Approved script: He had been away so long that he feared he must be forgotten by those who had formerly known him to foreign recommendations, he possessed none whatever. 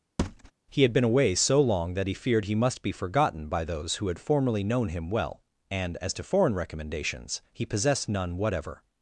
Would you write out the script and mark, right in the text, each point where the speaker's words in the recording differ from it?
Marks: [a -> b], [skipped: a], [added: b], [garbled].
He had been away so long that he feared he must be forgotten by those who had formerly known him [added: well and as] to foreign recommendations, he possessed none whatever.